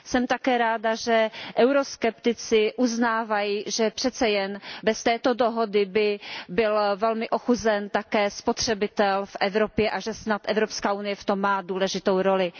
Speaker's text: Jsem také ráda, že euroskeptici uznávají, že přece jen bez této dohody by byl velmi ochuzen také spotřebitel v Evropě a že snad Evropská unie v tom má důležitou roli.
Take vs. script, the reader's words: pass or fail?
pass